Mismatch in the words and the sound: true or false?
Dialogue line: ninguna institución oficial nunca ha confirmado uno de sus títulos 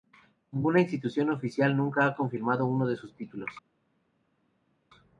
false